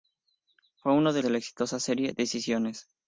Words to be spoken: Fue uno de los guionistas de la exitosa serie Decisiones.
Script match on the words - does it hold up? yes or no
no